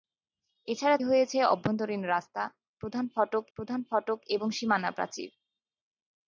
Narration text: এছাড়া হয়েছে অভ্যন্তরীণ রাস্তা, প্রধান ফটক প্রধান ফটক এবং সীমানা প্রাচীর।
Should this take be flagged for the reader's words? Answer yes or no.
no